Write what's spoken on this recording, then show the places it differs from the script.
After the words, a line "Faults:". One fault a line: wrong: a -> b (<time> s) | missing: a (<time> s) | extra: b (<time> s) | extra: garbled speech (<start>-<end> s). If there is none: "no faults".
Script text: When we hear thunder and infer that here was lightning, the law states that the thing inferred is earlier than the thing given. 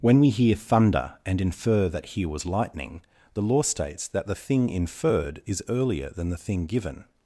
When we hear thunder and infer that here was lightning, the law states that the thing inferred is earlier than the thing given.
Faults:
no faults